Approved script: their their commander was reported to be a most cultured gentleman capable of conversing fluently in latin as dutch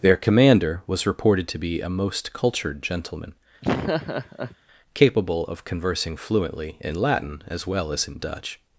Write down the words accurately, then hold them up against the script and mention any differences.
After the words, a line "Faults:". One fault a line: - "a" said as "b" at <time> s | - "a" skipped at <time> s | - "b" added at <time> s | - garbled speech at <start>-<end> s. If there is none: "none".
their commander was reported to be a most cultured gentleman capable of conversing fluently in latin as well as in dutch
Faults:
- "their" skipped at 0.2 s
- "well as in" added at 7.7 s